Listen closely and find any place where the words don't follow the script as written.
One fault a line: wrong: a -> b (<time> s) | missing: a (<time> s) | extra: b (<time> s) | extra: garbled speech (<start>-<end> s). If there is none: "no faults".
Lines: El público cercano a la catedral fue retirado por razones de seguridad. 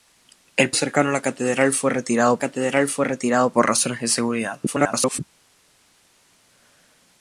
missing: público (0.7 s)
extra: catedral fue retirado (2.4 s)
extra: garbled speech (4.7-5.2 s)